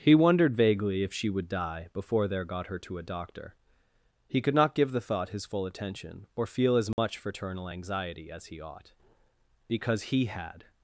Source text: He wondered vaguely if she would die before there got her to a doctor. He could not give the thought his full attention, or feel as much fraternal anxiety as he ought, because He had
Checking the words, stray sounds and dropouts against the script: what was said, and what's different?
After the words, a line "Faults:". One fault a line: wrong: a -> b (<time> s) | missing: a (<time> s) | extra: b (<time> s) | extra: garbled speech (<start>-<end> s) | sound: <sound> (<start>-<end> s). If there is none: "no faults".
He wondered vaguely if she would die before there got her to a doctor. He could not give the thought his full attention, or feel as much fraternal anxiety as he ought, because He had
Faults:
sound: dropout (6.9-7.0 s)